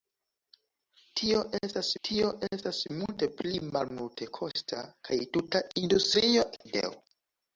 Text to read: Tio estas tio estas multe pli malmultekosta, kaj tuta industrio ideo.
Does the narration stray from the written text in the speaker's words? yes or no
no